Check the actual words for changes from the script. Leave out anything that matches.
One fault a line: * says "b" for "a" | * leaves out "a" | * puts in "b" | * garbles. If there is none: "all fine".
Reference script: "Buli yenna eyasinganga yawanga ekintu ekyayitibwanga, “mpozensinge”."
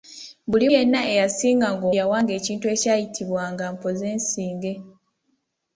all fine